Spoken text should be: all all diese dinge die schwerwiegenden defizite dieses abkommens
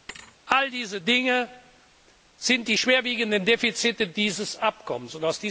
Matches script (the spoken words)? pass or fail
fail